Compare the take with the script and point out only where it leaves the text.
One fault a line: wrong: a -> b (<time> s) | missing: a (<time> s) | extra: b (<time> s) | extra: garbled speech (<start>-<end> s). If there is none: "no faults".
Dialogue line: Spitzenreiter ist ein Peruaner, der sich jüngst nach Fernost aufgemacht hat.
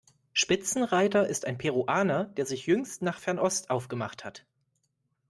no faults